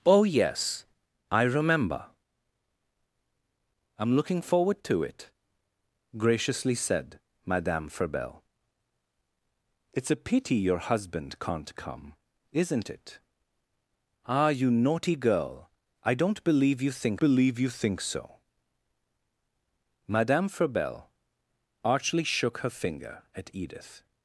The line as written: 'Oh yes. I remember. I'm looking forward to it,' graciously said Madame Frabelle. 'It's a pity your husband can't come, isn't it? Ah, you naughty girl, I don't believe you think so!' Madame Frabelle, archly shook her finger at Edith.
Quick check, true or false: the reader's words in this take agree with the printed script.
false